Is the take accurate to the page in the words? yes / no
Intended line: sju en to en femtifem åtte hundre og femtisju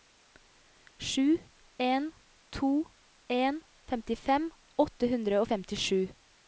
yes